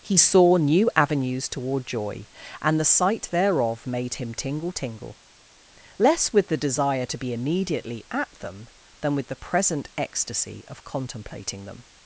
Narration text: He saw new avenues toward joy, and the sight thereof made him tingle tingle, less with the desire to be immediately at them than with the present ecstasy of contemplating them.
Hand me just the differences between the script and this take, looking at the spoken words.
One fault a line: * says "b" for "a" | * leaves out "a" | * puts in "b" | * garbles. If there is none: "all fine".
all fine